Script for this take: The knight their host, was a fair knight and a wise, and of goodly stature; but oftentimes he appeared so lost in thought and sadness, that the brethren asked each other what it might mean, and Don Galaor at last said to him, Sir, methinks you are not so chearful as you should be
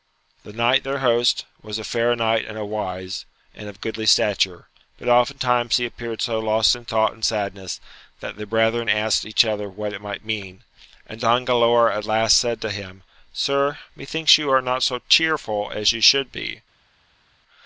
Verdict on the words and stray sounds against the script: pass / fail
pass